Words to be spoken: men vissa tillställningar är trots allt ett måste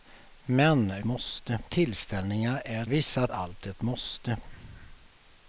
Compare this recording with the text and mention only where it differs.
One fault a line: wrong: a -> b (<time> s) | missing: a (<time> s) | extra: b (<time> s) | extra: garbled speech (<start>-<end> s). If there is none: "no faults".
wrong: vissa -> måste (1.0 s)
wrong: trots -> vissa (2.9 s)